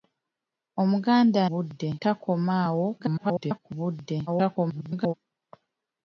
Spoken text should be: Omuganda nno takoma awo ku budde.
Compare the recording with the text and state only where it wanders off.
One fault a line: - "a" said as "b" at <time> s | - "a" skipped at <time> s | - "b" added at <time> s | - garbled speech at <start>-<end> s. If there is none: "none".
- "nno" said as "budde" at 1.5 s
- garbled speech at 3.0-3.6 s
- garbled speech at 4.3-5.1 s